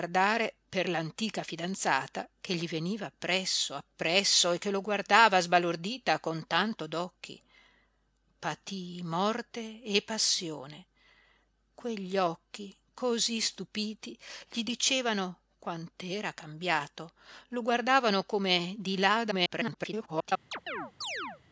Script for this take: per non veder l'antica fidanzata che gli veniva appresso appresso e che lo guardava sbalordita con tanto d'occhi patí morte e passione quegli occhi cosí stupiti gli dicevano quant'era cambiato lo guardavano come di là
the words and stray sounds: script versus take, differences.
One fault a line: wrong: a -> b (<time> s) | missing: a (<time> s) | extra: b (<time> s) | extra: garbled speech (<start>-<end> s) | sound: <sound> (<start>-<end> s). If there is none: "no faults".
missing: non veder (0.9 s)
extra: garbled speech (19.3-20.3 s)
sound: chirp (20.5-21.4 s)